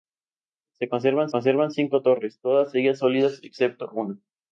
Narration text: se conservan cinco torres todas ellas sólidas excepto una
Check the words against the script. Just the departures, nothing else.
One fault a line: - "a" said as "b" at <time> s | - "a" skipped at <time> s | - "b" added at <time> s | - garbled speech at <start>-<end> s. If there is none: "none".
- "conservan" added at 1.3 s